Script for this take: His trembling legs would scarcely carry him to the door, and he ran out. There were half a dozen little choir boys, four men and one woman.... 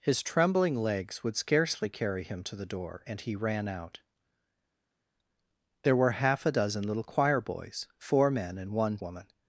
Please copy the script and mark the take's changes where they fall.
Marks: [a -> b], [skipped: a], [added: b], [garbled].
His trembling legs would scarcely carry him to the door, and he ran out. There were half a dozen little choir boys, four men and one woman....